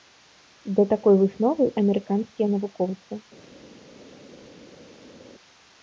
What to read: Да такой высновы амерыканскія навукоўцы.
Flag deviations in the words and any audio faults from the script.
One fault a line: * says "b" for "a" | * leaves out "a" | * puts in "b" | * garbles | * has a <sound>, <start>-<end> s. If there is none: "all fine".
all fine